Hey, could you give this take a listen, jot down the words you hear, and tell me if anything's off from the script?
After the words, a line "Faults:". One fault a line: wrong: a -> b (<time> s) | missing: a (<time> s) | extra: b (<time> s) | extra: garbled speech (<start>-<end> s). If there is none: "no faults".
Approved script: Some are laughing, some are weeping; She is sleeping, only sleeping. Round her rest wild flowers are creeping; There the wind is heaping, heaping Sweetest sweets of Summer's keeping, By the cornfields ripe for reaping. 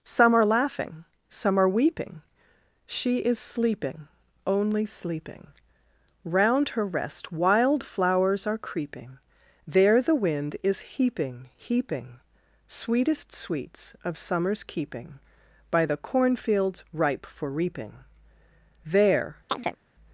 Some are laughing, some are weeping; She is sleeping, only sleeping. Round her rest wild flowers are creeping; There the wind is heaping, heaping Sweetest sweets of Summer's keeping, By the cornfields ripe for reaping. There
Faults:
extra: There (18.8 s)